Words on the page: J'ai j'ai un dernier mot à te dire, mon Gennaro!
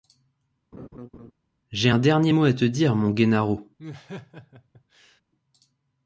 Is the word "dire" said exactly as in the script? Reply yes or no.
yes